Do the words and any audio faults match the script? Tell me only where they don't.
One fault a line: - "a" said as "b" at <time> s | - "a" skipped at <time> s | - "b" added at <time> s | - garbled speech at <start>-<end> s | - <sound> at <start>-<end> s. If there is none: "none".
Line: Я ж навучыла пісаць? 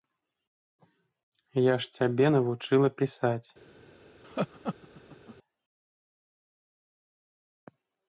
- "цябе" added at 2.0 s
- laugh at 4.2-5.4 s